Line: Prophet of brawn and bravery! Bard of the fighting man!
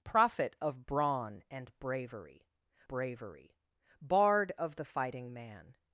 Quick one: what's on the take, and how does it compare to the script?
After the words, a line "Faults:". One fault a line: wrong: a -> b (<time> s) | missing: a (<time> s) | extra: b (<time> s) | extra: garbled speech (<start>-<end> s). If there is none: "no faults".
Prophet of brawn and bravery bravery! Bard of the fighting man!
Faults:
extra: bravery (2.9 s)